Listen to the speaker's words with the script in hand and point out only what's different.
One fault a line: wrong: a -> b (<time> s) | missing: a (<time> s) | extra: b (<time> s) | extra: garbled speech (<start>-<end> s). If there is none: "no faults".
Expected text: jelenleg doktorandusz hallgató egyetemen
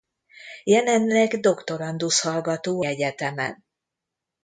no faults